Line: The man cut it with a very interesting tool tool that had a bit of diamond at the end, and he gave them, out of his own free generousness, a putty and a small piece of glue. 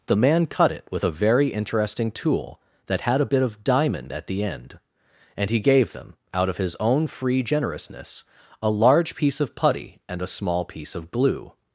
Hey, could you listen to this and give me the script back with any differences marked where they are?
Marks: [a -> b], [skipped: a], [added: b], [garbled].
The man cut it with a very interesting tool [skipped: tool] that had a bit of diamond at the end, and he gave them, out of his own free generousness, a [added: large piece of] putty and a small piece of glue.